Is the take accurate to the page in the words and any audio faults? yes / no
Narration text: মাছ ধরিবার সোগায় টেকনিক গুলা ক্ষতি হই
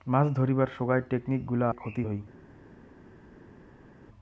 yes